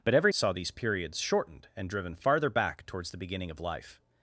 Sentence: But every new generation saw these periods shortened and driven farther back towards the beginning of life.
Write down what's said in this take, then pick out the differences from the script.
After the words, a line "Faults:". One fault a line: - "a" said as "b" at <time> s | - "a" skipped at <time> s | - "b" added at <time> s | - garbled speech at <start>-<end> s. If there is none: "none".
But every saw these periods shortened and driven farther back towards the beginning of life.
Faults:
- "new generation" skipped at 0.3 s